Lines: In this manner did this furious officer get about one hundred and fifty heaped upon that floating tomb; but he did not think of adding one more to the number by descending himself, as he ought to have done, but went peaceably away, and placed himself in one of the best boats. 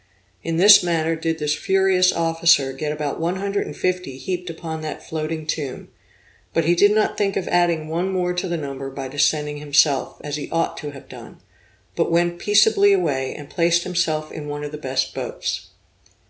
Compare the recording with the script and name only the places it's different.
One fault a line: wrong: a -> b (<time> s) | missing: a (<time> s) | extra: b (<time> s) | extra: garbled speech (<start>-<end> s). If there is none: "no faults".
no faults